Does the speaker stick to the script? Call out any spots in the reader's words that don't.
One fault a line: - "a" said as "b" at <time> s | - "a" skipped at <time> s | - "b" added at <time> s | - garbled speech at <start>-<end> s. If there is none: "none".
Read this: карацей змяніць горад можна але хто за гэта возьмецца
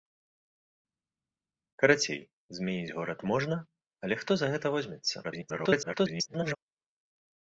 - garbled speech at 5.2-6.6 s